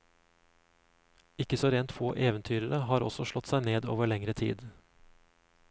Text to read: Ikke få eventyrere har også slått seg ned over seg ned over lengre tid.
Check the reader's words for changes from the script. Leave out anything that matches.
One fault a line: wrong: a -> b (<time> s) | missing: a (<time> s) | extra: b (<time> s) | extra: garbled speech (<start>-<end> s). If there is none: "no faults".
extra: så rent (1.6 s)
missing: seg ned over (4.1 s)